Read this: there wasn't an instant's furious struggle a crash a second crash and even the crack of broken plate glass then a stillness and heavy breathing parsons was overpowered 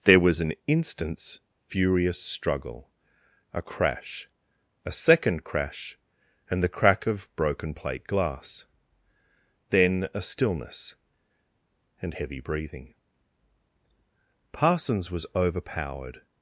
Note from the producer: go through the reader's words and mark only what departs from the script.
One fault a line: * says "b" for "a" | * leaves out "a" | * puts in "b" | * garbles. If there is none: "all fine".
* says "was" for "wasn't"
* leaves out "even"